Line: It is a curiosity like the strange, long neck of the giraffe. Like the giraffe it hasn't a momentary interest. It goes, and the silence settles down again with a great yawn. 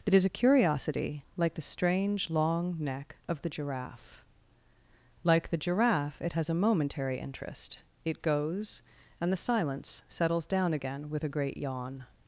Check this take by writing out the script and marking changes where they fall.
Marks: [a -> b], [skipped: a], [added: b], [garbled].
It is a curiosity like the strange, long neck of the giraffe. Like the giraffe it [hasn't -> has] a momentary interest. It goes, and the silence settles down again with a great yawn.